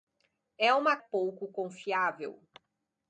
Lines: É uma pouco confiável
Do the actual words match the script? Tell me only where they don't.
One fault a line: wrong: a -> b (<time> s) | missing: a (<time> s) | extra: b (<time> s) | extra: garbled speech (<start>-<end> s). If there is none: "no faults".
no faults